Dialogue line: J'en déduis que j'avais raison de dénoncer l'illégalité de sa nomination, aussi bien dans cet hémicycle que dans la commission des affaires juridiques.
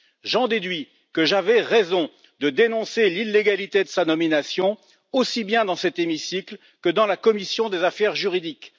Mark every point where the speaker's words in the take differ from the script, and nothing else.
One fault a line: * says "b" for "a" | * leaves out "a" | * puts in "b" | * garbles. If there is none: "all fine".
all fine